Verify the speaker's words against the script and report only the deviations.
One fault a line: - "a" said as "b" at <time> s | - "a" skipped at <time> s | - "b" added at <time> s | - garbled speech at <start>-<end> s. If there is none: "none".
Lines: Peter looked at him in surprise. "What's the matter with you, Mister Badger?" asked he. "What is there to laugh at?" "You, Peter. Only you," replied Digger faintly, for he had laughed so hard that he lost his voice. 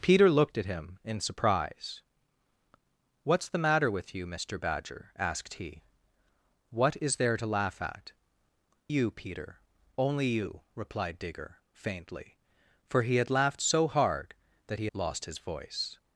none